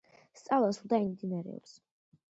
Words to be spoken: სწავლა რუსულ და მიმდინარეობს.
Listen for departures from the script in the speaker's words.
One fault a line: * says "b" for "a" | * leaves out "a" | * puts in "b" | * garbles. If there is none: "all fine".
all fine